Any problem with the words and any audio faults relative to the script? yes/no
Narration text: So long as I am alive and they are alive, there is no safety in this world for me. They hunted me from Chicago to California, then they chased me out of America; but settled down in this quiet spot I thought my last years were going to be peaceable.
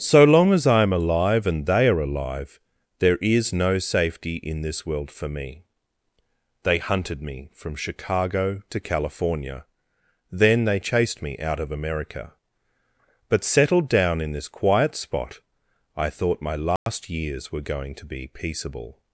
yes